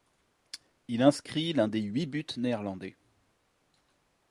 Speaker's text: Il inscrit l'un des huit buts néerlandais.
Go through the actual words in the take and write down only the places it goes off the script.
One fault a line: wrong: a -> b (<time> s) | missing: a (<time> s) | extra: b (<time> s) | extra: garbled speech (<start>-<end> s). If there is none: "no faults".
no faults